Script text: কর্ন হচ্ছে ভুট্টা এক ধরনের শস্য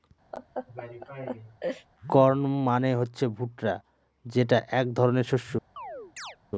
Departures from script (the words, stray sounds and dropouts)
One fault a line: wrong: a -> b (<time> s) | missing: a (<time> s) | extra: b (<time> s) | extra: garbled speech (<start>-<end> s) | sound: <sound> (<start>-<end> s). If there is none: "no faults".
sound: laugh (0.3-1.9 s)
extra: মানে (2.7 s)
extra: যেটা (4.3 s)
sound: chirp (5.8-6.4 s)